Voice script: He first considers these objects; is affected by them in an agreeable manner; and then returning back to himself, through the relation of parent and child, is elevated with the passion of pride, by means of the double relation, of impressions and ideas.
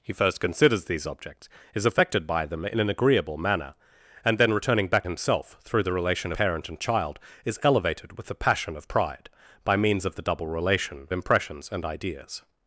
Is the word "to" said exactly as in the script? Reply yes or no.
no